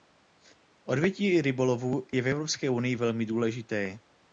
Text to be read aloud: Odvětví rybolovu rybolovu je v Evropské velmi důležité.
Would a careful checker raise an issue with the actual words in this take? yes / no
yes